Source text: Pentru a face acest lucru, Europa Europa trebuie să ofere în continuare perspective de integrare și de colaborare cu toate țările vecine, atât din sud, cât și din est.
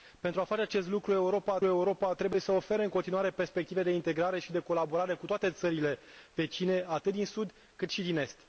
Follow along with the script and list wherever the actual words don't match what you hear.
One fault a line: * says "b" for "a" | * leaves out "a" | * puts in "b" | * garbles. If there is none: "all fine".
all fine